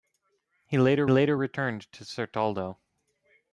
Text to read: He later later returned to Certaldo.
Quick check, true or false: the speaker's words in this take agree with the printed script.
true